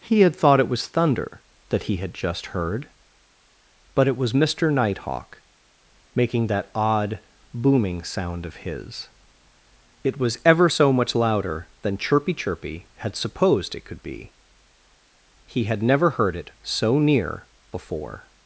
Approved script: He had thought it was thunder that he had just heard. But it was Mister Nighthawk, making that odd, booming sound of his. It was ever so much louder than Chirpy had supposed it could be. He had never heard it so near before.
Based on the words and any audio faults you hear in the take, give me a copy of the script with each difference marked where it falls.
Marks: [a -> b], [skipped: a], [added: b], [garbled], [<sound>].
He had thought it was thunder that he had just heard. But it was Mister Nighthawk, making that odd, booming sound of his. It was ever so much louder than Chirpy [added: Chirpy] had supposed it could be. He had never heard it so near before.